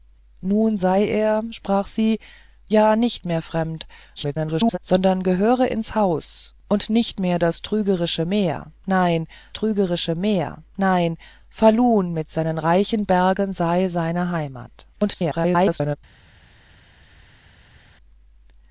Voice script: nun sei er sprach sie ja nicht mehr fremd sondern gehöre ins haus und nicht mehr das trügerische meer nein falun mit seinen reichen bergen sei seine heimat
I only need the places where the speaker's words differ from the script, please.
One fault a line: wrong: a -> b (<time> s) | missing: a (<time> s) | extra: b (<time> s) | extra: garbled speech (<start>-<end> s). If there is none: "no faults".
extra: garbled speech (4.2-4.8 s)
extra: trügerische meer nein (9.5 s)
extra: garbled speech (14.9-16.0 s)